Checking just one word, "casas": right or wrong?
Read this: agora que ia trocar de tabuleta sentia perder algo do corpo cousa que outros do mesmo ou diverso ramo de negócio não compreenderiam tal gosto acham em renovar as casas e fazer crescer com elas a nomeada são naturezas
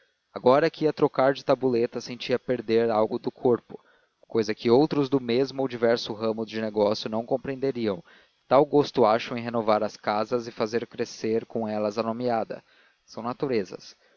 right